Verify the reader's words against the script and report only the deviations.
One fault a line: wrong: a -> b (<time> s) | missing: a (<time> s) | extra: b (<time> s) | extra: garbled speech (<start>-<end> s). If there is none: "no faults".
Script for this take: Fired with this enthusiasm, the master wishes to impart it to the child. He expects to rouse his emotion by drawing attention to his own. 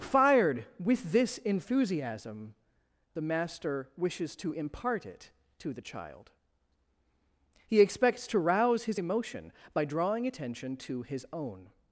no faults